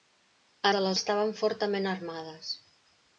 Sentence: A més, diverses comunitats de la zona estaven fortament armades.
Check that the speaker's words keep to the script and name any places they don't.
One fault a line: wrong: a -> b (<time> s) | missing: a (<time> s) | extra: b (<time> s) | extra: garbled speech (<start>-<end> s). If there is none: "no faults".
missing: més diverses comunitats (0.7 s)
missing: zona (0.9 s)